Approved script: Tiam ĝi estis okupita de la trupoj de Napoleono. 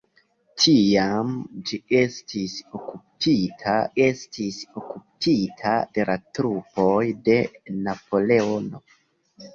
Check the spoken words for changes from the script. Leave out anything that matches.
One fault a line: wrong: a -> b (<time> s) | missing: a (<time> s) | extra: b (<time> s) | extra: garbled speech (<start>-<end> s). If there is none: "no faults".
extra: estis okupita (4.0 s)